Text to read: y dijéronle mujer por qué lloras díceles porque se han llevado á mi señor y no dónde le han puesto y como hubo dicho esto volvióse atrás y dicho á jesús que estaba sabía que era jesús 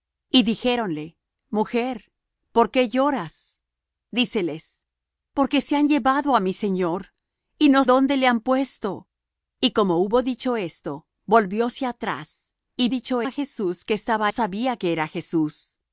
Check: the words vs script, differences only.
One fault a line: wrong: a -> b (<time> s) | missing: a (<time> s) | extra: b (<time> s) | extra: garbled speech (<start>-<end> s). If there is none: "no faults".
no faults